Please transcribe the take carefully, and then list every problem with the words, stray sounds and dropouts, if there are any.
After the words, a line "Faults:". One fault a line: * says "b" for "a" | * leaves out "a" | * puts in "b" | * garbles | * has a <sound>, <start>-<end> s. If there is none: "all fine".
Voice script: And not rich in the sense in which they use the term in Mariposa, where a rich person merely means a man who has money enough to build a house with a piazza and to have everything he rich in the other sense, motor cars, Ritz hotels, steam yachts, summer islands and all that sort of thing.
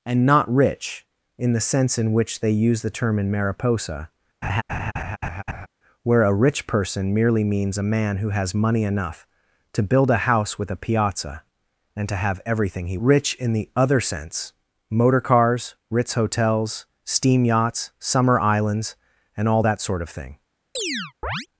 And not rich in the sense in which they use the term in Mariposa, where a rich person merely means a man who has money enough to build a house with a piazza and to have everything he rich in the other sense, motor cars, Ritz hotels, steam yachts, summer islands and all that sort of thing.
Faults:
* has a laugh, 4.4-5.7 s
* has a chirp, 20.8-21.5 s